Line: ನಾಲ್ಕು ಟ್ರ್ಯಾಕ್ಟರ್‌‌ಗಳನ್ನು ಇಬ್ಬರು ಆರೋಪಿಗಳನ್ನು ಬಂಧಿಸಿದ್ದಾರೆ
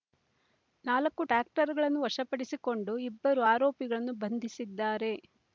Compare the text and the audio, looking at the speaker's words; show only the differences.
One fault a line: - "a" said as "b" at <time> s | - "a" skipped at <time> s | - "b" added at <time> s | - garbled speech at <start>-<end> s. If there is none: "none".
- "ವಶಪಡಿಸಿಕೊಂಡು" added at 2.0 s